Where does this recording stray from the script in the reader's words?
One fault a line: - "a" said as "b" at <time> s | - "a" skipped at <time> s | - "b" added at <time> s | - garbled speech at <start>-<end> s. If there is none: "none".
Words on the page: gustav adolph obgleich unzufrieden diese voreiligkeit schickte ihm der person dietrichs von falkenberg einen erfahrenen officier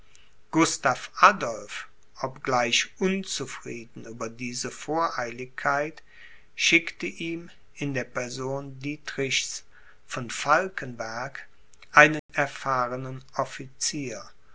- "über" added at 4.0 s
- "in" added at 7.7 s